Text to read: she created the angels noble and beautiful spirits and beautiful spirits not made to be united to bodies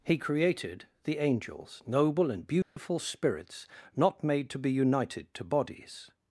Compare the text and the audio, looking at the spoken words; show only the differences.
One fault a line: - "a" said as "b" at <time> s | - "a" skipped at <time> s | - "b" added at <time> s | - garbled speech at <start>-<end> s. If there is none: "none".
- "she" said as "he" at 0.0 s
- "and beautiful spirits" skipped at 3.7 s